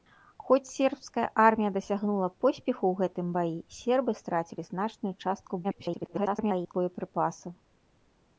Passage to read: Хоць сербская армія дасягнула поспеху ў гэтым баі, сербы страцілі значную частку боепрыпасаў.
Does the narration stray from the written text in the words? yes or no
yes